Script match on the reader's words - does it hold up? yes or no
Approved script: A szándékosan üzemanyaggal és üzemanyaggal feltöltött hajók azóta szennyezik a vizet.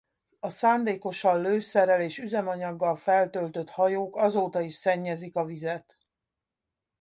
no